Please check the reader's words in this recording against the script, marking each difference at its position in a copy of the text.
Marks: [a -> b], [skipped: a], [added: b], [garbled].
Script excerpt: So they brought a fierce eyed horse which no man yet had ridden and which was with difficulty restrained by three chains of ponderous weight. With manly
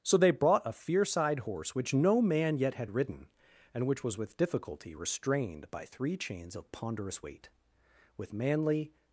So they brought a fierce eyed horse which no man yet had ridden and which was with difficulty restrained by three chains of ponderous weight. With manly